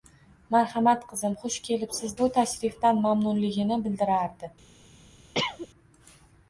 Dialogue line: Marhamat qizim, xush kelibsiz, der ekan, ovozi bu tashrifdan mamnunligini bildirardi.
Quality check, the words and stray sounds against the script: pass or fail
fail